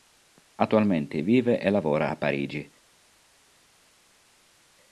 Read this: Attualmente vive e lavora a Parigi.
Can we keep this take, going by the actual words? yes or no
yes